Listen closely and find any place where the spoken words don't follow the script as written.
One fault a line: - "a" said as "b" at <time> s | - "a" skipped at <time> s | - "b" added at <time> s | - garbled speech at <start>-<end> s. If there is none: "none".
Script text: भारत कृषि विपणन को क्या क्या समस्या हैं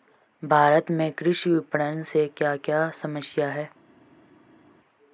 - "में" added at 0.9 s
- "को" said as "से" at 2.0 s